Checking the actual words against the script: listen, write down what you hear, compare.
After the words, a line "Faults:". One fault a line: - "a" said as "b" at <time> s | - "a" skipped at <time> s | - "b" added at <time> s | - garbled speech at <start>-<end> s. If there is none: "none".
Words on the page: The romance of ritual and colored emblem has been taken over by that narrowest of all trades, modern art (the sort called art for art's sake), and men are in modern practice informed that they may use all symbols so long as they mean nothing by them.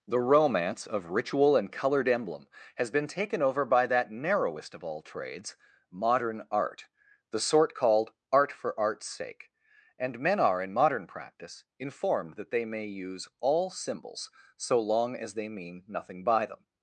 The romance of ritual and colored emblem has been taken over by that narrowest of all trades, modern art (the sort called art for art's sake), and men are in modern practice informed that they may use all symbols so long as they mean nothing by them.
Faults:
none